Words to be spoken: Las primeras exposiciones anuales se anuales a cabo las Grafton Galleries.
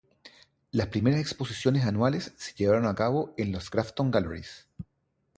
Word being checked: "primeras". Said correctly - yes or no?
yes